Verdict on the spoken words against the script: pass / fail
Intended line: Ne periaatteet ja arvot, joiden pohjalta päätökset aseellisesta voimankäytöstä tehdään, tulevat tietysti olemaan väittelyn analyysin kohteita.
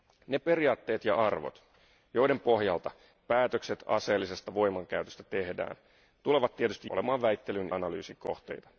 pass